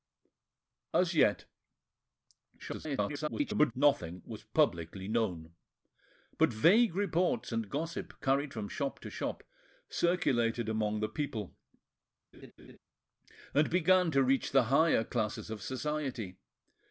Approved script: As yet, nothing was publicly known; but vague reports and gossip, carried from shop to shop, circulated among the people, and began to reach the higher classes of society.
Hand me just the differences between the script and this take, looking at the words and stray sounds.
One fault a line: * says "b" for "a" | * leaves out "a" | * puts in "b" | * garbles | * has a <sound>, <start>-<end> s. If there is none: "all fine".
* garbles
* has a laugh, 12.3-12.8 s